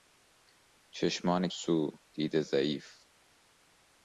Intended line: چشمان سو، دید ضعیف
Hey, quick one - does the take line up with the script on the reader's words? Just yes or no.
yes